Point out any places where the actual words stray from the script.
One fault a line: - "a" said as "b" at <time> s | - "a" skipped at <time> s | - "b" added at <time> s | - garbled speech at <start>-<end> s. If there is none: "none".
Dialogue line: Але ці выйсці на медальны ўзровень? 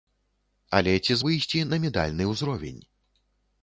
none